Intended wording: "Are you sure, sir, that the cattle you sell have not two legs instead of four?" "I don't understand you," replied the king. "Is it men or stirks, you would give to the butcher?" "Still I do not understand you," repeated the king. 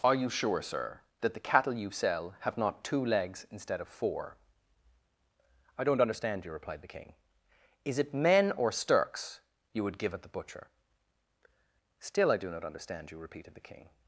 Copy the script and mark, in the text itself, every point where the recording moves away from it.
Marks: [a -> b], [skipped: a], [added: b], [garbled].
"Are you sure, sir, that the cattle you sell have not two legs instead of four?" "I don't understand you," replied the king. "Is it men or stirks, you would give [to -> at] the butcher?" "Still I do not understand you," repeated the king.